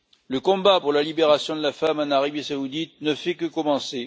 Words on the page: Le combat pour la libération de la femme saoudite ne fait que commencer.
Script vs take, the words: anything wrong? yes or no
yes